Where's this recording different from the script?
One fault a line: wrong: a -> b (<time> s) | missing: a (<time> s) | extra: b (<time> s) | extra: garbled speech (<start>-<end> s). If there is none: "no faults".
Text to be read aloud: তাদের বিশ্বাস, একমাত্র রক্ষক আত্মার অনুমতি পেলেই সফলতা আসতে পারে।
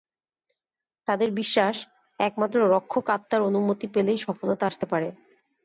no faults